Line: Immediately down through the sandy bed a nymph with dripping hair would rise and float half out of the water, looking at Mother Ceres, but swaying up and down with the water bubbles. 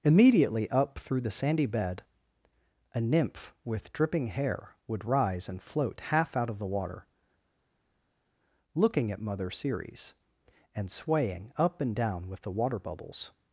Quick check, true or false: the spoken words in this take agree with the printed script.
false